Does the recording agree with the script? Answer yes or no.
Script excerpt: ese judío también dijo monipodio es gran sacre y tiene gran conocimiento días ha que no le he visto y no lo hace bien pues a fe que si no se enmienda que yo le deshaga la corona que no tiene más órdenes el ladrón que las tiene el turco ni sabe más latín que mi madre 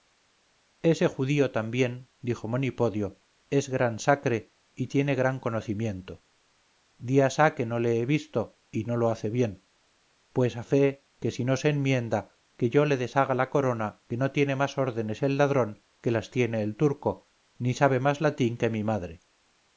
yes